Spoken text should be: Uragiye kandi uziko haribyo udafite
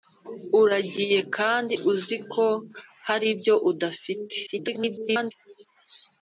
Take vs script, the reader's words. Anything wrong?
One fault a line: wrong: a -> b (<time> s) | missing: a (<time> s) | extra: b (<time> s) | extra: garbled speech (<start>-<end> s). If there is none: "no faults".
extra: garbled speech (4.5-5.3 s)